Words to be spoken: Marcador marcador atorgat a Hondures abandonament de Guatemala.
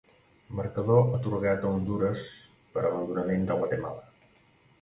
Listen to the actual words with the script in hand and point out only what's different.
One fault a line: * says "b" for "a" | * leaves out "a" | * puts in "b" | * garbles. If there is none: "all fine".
* leaves out "marcador"
* puts in "per"